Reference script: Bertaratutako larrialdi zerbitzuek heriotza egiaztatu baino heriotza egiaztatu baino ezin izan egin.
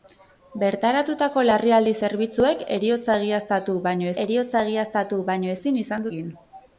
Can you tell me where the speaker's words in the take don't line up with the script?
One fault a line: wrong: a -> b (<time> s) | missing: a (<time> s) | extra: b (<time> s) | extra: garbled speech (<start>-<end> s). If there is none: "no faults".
no faults